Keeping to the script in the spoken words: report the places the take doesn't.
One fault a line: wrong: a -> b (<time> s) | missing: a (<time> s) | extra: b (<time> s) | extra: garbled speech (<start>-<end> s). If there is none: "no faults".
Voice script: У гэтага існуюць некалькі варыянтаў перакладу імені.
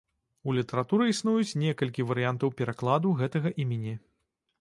wrong: гэтага -> літаратуры (0.6 s)
extra: гэтага (3.2 s)